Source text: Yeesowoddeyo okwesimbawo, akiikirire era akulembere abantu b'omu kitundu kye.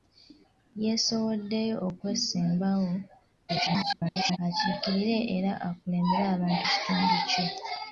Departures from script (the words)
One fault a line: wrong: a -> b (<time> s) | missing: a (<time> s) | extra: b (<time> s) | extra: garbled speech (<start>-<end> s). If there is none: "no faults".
extra: garbled speech (3.5-4.4 s)
missing: b'omu (6.6 s)